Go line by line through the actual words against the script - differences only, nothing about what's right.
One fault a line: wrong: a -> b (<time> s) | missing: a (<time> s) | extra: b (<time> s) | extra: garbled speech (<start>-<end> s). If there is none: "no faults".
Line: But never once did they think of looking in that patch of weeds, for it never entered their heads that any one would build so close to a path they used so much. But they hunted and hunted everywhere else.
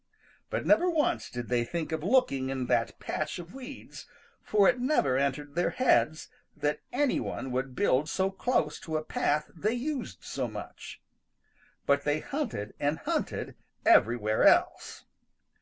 no faults